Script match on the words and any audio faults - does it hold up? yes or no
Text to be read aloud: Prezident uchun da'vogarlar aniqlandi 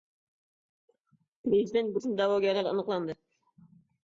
yes